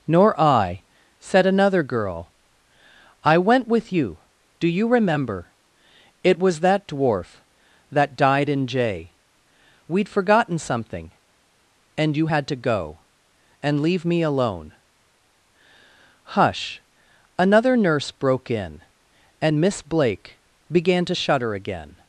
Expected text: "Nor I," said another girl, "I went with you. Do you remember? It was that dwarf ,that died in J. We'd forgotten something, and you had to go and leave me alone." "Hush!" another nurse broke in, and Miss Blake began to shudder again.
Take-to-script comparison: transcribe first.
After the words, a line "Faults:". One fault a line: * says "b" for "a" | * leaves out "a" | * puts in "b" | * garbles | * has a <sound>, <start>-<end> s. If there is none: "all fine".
"Nor I," said another girl, "I went with you. Do you remember? It was that dwarf ,that died in J. We'd forgotten something, and you had to go and leave me alone." "Hush!" another nurse broke in, and Miss Blake began to shudder again.
Faults:
all fine